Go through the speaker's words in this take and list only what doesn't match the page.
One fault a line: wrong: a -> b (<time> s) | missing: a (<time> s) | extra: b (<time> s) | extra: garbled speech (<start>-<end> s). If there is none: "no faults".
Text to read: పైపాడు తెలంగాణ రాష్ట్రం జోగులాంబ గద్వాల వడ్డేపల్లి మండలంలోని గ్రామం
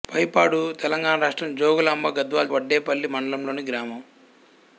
no faults